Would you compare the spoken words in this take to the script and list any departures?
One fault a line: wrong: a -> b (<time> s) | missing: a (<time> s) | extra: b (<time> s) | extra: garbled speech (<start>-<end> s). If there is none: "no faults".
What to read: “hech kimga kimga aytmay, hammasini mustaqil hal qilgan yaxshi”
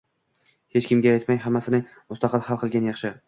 missing: kimga (1.1 s)